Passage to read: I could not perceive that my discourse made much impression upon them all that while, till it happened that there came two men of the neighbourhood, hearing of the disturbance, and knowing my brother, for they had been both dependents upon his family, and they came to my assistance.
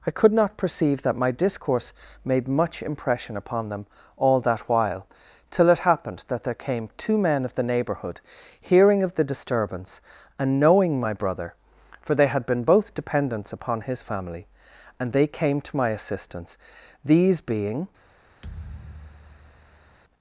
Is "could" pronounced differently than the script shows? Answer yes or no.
no